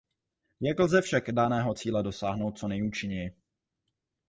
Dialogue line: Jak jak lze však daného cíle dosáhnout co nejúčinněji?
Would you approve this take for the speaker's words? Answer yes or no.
no